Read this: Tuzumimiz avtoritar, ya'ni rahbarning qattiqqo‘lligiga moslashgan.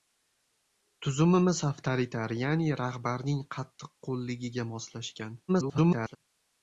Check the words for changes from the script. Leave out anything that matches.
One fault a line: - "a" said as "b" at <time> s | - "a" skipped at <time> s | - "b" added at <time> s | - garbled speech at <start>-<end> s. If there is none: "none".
- garbled speech at 5.5-6.2 s